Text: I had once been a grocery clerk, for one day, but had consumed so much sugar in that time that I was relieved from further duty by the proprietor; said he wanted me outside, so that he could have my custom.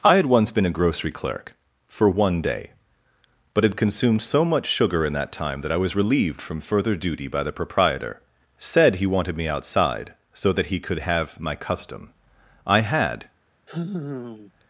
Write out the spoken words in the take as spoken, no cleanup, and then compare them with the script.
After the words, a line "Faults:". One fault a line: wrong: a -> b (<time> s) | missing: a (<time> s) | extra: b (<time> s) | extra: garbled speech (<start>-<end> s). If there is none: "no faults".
I had once been a grocery clerk, for one day, but had consumed so much sugar in that time that I was relieved from further duty by the proprietor; said he wanted me outside, so that he could have my custom. I had
Faults:
extra: I had (12.7 s)